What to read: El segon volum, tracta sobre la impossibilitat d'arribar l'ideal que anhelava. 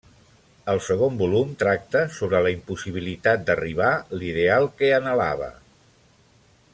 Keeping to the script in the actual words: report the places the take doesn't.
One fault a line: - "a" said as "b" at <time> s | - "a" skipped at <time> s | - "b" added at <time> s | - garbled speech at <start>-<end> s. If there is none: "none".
none